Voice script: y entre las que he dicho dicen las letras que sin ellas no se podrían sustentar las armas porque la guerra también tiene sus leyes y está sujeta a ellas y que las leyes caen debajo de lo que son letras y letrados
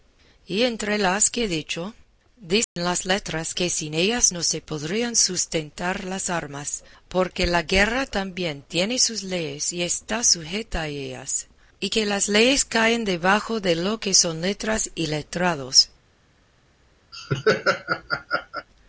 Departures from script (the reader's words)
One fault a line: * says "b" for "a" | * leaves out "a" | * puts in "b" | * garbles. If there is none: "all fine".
all fine